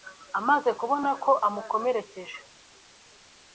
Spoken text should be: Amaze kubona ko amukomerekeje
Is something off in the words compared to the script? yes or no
no